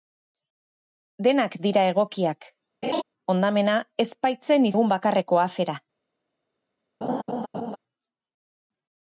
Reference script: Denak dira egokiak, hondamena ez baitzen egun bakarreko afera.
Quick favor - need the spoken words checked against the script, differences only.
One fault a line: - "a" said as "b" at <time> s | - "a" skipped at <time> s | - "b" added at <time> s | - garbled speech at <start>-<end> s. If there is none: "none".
none